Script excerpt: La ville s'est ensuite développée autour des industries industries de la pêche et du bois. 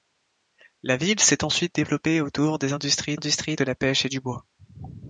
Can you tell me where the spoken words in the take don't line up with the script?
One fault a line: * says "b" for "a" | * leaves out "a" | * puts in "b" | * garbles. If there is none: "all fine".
all fine